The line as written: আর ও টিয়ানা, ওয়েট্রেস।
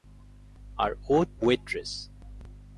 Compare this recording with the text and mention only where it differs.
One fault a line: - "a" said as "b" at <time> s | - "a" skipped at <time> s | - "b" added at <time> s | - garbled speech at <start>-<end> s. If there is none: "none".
- "টিয়ানা" skipped at 1.2 s